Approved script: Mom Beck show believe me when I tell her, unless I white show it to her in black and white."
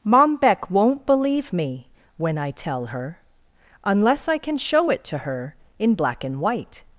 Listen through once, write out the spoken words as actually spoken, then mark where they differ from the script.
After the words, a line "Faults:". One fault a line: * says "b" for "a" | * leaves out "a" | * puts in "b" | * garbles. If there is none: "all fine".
Mom Beck won't believe me when I tell her, unless I can show it to her in black and white."
Faults:
* says "won't" for "show"
* says "can" for "white"